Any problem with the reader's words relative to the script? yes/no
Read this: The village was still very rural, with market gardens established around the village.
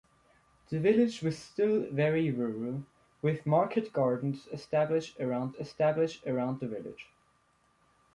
yes